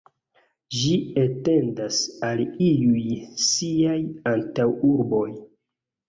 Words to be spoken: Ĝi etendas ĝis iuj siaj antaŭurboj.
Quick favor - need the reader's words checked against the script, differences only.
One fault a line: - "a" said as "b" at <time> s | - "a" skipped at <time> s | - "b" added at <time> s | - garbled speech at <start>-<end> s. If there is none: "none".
- "ĝis" said as "al" at 2.3 s